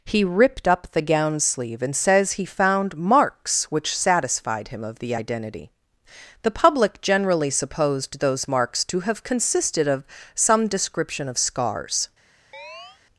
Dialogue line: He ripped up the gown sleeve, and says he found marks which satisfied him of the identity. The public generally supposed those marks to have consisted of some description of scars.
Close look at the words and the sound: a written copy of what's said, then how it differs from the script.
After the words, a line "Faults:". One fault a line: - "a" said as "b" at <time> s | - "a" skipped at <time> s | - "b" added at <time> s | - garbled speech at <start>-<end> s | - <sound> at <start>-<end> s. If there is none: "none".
He ripped up the gown sleeve, and says he found marks which satisfied him of the identity. The public generally supposed those marks to have consisted of some description of scars.
Faults:
- chirp at 12.5-13.0 s